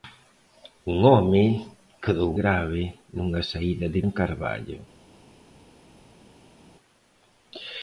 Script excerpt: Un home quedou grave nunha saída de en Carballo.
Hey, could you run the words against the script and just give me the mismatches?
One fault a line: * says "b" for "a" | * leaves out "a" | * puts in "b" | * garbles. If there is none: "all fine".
all fine